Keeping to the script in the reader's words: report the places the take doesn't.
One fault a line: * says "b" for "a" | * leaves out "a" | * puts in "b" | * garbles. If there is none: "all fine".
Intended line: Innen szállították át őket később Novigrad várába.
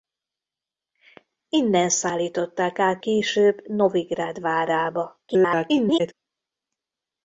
* leaves out "őket"
* garbles